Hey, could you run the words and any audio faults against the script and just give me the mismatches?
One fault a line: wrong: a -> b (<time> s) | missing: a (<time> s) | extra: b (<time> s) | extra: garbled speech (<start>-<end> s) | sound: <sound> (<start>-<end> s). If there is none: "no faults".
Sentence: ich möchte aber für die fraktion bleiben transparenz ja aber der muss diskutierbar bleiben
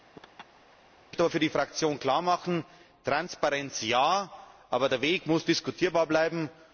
sound: laugh (0.1-0.8 s)
wrong: bleiben -> klarmachen (2.0 s)
extra: weg (5.0 s)